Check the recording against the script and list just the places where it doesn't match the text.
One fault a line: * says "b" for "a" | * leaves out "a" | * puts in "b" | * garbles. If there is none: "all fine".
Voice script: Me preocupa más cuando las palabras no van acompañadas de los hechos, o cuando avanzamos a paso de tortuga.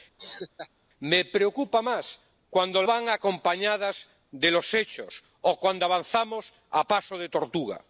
* leaves out "las palabras no"